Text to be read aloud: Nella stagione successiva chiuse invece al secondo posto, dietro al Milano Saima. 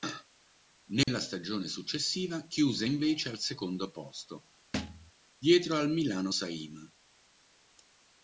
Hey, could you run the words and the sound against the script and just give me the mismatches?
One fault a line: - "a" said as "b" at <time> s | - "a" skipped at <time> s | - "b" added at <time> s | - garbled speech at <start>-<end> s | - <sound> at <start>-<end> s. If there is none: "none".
- dropout at 1.0-1.1 s
- thud at 4.7-5.1 s